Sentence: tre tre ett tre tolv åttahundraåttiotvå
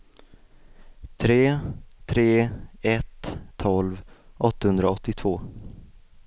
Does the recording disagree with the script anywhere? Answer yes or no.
yes